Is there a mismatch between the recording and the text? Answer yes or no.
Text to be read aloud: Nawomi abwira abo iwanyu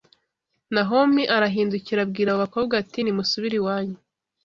yes